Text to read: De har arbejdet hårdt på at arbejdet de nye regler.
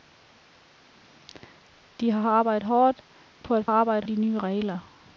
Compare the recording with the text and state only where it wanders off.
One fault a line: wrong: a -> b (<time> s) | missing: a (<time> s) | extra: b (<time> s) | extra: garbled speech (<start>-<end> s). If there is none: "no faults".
no faults